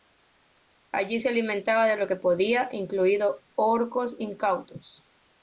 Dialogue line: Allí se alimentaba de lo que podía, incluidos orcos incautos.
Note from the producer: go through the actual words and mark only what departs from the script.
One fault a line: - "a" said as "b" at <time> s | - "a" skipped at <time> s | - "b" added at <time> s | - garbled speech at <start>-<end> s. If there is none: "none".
none